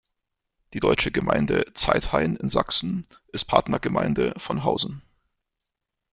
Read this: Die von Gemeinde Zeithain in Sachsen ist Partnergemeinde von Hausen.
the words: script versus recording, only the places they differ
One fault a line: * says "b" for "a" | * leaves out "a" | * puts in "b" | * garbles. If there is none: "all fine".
* says "deutsche" for "von"